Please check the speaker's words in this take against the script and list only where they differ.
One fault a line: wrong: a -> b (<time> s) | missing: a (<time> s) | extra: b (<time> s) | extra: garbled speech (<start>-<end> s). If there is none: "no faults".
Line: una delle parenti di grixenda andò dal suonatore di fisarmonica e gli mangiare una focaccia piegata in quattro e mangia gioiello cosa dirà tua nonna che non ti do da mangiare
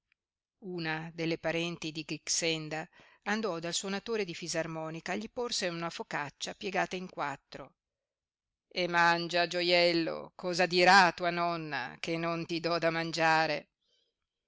wrong: mangiare -> porse (5.3 s)